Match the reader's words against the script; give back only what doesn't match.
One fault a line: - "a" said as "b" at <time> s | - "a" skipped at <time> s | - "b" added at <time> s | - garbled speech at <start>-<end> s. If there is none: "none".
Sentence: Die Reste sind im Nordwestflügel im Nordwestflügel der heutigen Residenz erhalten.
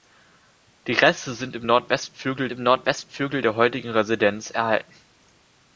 none